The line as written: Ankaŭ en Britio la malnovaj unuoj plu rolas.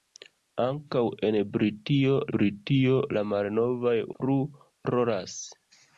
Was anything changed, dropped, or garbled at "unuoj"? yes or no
yes